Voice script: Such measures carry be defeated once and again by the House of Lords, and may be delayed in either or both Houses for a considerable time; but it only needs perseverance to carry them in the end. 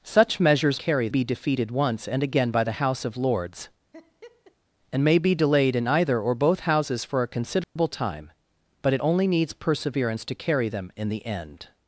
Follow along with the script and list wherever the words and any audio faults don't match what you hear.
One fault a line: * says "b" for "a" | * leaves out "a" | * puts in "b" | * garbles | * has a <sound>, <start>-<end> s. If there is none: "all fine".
* has a laugh, 3.9-4.6 s
* has a dropout, 7.6-7.8 s